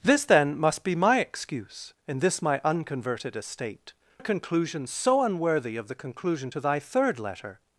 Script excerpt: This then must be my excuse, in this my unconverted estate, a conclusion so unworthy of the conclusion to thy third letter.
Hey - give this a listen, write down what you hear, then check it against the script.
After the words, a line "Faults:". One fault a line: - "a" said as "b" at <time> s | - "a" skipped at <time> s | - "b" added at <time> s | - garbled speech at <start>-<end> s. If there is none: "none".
This then must be my excuse, in this my unconverted estate, a conclusion so unworthy of the conclusion to thy third letter.
Faults:
none